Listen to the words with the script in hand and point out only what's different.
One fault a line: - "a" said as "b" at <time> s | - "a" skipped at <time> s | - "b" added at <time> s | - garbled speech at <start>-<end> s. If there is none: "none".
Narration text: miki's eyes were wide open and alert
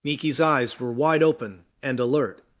none